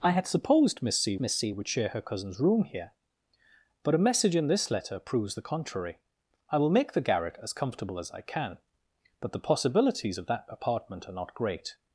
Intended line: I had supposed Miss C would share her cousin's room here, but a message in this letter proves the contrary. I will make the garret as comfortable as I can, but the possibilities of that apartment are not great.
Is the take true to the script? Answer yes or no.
no